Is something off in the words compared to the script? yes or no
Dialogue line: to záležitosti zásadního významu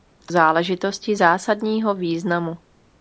no